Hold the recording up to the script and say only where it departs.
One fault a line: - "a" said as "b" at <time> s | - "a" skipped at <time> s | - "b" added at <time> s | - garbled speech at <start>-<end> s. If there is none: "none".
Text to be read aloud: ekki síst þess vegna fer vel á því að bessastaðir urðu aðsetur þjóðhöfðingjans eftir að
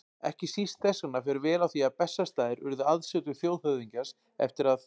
none